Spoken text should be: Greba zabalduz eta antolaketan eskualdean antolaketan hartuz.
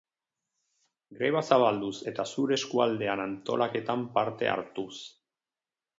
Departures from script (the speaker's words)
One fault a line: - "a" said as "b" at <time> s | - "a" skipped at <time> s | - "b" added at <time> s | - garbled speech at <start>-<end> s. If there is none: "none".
- "antolaketan" said as "zure" at 2.3 s
- "parte" added at 4.2 s